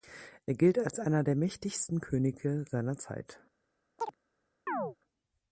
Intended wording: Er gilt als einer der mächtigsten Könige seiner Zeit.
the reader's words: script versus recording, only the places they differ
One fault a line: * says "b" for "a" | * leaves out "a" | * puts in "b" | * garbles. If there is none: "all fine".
all fine